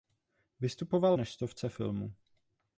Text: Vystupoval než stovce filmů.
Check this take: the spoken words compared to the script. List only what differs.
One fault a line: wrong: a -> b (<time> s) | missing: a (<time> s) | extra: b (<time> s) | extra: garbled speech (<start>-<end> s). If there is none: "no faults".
no faults